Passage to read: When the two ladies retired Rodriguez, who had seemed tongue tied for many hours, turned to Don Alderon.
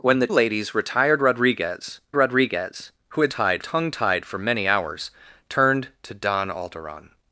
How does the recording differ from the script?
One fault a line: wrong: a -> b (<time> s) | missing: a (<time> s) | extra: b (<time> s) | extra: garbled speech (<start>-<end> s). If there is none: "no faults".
missing: two (0.3 s)
extra: Rodriguez (2.2 s)
wrong: seemed -> tied (3.3 s)